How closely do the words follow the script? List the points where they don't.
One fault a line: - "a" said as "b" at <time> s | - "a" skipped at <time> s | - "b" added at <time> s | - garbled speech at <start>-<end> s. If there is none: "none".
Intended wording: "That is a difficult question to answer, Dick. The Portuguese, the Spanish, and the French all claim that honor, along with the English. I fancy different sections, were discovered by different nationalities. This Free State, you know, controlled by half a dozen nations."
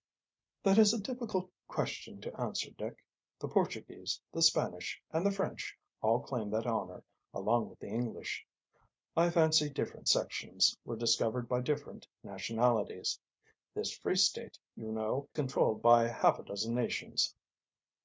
none